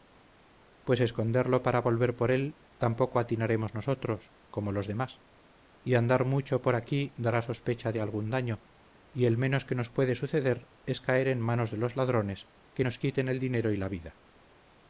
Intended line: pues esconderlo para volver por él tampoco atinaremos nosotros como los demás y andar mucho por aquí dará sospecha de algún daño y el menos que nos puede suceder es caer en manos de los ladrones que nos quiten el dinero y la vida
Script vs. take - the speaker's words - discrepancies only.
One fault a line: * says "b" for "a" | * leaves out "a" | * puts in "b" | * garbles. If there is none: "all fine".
all fine